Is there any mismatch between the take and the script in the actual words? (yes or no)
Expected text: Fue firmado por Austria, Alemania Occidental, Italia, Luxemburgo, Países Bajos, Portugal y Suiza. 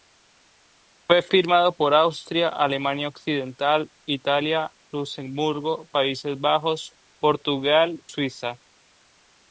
yes